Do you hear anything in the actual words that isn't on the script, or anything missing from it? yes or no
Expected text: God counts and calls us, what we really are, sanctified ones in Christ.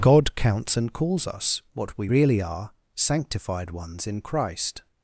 no